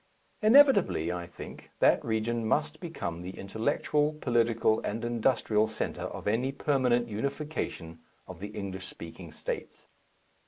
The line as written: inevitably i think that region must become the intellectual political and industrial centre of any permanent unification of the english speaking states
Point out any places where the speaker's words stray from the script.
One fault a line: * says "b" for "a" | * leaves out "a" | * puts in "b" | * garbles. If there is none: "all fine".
all fine